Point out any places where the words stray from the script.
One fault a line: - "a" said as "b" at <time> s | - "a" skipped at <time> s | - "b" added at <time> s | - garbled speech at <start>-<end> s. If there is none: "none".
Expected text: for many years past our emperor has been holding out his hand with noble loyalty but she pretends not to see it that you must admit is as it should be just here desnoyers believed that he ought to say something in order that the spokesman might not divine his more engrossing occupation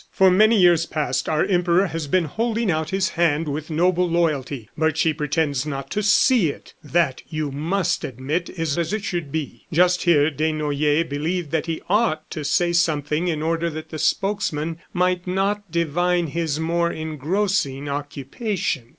none